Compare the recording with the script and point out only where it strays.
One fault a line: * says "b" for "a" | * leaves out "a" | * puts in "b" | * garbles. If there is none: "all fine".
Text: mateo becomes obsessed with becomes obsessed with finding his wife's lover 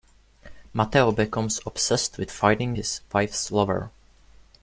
* leaves out "becomes obsessed with"